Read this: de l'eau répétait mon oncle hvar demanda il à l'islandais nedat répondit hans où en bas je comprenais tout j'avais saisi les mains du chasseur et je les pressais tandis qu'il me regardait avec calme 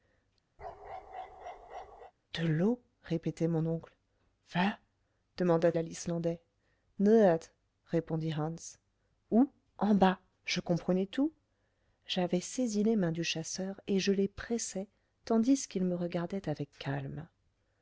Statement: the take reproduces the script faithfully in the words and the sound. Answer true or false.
false